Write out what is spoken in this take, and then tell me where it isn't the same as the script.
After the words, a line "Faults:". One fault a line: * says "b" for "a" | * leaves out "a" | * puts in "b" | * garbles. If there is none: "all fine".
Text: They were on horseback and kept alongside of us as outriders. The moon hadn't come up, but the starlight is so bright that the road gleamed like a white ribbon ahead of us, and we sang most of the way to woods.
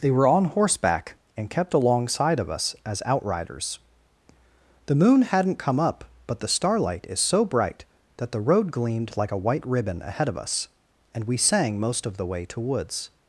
They were on horseback and kept alongside of us as outriders. The moon hadn't come up, but the starlight is so bright that the road gleamed like a white ribbon ahead of us, and we sang most of the way to woods.
Faults:
all fine